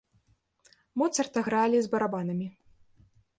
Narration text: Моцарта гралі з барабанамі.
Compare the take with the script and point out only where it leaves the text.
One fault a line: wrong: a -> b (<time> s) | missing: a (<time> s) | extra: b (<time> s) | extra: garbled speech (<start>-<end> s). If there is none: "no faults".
no faults